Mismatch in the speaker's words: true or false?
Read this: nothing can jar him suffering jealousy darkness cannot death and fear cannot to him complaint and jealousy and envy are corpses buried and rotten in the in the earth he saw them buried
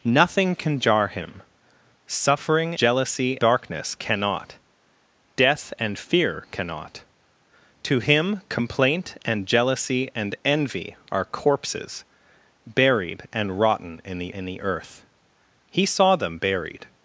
false